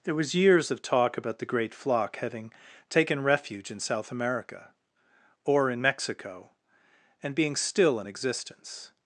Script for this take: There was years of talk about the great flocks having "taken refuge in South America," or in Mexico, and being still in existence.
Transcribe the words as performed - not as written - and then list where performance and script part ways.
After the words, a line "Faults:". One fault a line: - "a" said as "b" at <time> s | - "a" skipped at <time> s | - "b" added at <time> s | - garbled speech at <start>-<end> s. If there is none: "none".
There was years of talk about the great flock having "taken refuge in South America," or in Mexico, and being still in existence.
Faults:
- "flocks" said as "flock" at 1.8 s